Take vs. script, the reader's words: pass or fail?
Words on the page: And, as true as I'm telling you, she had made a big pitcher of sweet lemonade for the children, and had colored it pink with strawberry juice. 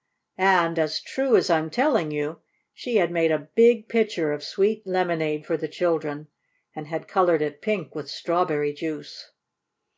pass